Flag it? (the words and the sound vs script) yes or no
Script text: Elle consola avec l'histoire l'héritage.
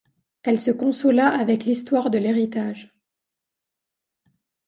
yes